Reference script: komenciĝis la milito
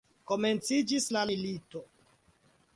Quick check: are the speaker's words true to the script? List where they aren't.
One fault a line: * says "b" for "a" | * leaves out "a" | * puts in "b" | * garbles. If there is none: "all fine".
all fine